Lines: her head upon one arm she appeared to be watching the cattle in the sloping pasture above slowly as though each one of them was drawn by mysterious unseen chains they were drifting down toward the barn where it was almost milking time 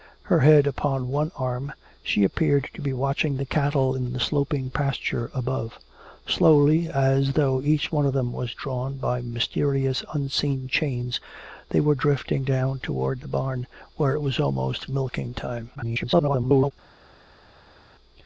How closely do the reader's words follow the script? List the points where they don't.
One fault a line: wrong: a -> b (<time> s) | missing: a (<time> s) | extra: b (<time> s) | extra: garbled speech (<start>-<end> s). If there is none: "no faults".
extra: garbled speech (15.8-16.7 s)